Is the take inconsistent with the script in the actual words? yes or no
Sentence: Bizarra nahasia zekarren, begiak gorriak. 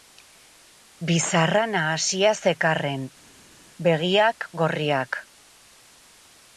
no